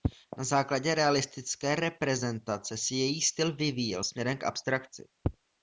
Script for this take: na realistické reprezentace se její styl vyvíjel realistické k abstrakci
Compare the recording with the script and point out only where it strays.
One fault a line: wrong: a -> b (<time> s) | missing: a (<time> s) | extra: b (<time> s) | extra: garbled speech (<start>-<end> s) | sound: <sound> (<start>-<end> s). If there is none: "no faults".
extra: základě (0.4 s)
wrong: realistické -> směrem (4.0 s)